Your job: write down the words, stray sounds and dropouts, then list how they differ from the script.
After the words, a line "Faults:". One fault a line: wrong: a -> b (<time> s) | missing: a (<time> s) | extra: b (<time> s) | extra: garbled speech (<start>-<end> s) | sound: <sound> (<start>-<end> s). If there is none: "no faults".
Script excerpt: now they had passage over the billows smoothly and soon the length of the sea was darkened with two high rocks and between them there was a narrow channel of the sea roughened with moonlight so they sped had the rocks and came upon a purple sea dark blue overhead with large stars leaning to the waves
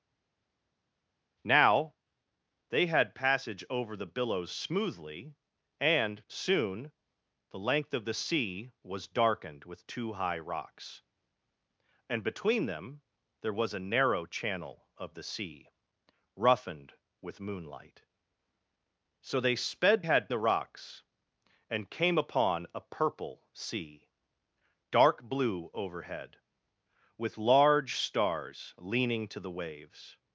now they had passage over the billows smoothly and soon the length of the sea was darkened with two high rocks and between them there was a narrow channel of the sea roughened with moonlight so they sped had the rocks and came upon a purple sea dark blue overhead with large stars leaning to the waves
Faults:
no faults